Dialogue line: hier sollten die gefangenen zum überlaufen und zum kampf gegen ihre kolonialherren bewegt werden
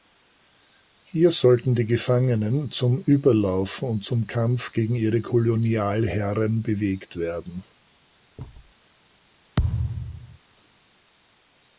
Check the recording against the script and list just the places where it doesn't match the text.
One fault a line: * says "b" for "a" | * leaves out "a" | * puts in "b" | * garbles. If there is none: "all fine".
all fine